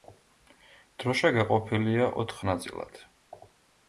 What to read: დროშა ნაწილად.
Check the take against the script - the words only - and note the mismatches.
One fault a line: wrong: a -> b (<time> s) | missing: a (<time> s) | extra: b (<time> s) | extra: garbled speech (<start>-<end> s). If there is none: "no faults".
extra: გაყოფილია ოთხ (1.4 s)